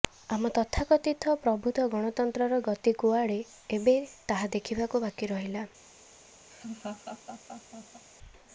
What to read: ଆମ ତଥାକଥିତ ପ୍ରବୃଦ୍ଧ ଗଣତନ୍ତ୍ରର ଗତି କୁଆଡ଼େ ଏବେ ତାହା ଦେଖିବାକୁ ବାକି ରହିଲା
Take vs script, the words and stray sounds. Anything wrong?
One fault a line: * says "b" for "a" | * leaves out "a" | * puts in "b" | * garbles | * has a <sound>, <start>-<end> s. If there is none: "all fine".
* has a laugh, 6.5-8.0 s